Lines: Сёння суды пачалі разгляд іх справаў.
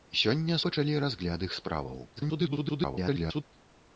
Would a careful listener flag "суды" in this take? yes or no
yes